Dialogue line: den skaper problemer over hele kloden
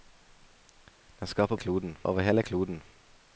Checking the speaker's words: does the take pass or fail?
fail